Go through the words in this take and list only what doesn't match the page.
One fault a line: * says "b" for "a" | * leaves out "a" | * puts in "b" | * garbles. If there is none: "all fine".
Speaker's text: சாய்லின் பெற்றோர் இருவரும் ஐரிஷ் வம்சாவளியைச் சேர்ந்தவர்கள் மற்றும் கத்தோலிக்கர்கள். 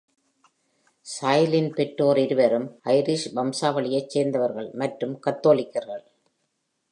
all fine